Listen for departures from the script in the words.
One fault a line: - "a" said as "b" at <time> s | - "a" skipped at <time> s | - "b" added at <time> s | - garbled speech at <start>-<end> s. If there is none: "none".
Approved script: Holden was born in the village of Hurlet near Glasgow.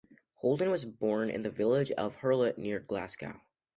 none